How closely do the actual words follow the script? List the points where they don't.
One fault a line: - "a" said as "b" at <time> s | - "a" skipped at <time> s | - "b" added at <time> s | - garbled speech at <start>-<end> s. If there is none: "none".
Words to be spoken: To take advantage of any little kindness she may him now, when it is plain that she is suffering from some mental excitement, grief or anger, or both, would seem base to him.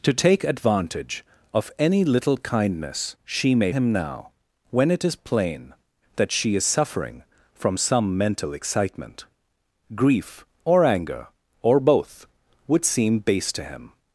none